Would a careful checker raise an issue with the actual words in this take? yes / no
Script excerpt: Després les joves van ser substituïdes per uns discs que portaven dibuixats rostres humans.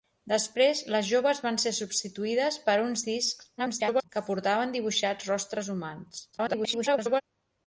yes